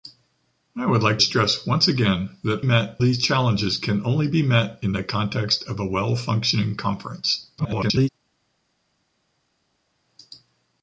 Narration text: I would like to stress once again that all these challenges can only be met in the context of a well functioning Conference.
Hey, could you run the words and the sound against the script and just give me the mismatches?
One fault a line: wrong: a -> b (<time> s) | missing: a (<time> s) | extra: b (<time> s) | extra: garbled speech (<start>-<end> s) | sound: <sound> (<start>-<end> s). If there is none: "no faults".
missing: to (1.2 s)
wrong: all -> met (2.6 s)
extra: garbled speech (7.6-8.1 s)